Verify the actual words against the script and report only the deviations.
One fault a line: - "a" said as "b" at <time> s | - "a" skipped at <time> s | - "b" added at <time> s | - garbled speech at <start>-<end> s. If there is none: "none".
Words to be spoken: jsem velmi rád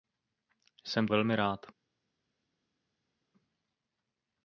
none